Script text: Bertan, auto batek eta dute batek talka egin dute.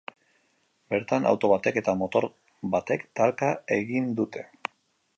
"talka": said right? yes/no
yes